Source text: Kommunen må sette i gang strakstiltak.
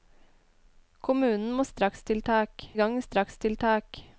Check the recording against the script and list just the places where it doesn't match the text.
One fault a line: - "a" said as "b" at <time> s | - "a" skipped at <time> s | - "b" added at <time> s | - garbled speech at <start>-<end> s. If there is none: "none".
- "sette" said as "strakstiltak" at 1.7 s